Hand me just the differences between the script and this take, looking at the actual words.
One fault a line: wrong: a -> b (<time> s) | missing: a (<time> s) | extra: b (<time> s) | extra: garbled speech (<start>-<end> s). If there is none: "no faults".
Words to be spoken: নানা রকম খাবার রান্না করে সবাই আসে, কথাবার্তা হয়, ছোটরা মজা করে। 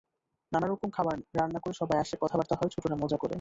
no faults